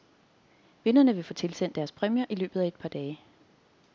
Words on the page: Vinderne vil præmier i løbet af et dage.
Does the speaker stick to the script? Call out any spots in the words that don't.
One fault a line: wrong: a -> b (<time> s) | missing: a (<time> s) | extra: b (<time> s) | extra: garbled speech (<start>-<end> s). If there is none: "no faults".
extra: få tilsendt deres (1.2 s)
extra: par (2.8 s)